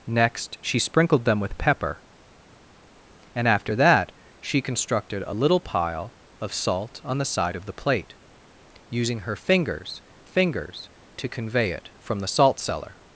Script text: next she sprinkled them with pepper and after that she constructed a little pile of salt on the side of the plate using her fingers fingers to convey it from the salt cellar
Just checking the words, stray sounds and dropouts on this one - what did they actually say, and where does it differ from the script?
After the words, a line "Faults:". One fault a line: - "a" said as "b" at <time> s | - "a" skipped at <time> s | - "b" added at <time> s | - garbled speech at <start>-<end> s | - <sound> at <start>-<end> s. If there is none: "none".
next she sprinkled them with pepper and after that she constructed a little pile of salt on the side of the plate using her fingers fingers to convey it from the salt cellar
Faults:
none